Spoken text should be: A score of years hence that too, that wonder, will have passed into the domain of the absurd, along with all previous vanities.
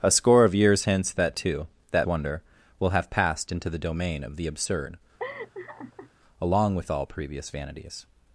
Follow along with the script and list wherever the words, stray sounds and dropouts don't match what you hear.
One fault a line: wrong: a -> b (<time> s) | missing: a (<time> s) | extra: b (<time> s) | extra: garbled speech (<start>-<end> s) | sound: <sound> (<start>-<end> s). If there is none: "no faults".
sound: laugh (5.2-6.1 s)